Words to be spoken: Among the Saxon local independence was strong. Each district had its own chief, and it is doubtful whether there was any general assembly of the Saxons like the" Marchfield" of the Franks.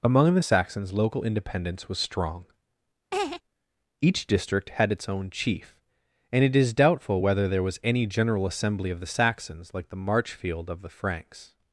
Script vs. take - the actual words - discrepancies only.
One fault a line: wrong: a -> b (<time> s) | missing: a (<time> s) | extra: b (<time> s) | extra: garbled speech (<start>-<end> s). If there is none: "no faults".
wrong: Saxon -> Saxons (0.4 s)